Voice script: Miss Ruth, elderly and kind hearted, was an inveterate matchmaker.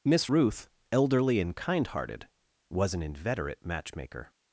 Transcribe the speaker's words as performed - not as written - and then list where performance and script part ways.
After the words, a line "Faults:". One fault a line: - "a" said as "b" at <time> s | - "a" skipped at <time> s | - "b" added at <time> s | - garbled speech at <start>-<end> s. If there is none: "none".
Miss Ruth, elderly and kind hearted, was an inveterate matchmaker.
Faults:
none